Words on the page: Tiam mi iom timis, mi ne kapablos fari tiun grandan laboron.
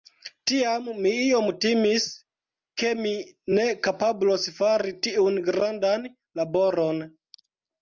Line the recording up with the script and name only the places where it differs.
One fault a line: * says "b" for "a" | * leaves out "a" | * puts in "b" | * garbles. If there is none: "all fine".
* puts in "ke"